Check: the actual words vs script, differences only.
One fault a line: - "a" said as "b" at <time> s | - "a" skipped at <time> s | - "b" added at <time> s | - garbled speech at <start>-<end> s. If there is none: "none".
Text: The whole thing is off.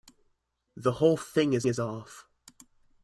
- "is" added at 1.7 s